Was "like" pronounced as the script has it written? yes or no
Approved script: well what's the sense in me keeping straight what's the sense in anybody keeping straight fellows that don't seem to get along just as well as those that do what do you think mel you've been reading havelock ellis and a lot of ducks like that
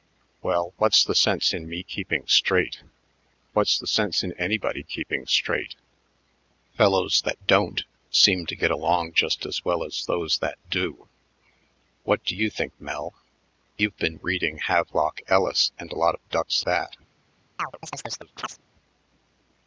no